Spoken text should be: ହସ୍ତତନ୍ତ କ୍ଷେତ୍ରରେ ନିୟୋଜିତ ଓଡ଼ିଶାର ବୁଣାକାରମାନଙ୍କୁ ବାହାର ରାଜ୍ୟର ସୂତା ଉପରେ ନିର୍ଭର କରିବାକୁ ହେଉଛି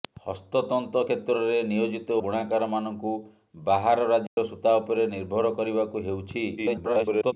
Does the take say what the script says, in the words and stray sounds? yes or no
no